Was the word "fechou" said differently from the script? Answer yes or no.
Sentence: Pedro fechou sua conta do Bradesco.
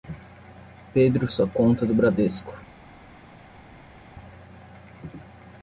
yes